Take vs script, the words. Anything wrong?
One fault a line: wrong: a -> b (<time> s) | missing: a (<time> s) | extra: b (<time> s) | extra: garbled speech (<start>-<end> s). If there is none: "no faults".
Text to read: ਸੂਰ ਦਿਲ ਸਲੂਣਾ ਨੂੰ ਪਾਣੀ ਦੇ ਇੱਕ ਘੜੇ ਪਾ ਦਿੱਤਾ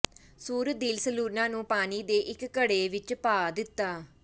extra: ਵਿੱਚ (2.9 s)